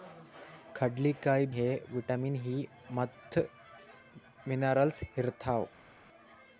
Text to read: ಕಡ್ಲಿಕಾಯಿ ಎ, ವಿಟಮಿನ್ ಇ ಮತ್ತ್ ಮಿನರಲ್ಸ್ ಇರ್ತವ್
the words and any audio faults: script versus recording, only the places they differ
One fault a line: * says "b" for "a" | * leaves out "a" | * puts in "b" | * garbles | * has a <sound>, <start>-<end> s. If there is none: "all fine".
all fine